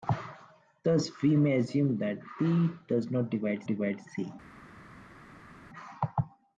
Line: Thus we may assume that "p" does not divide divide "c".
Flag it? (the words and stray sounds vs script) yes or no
no